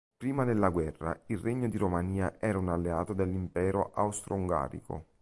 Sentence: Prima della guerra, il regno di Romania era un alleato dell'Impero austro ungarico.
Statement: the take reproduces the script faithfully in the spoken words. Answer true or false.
true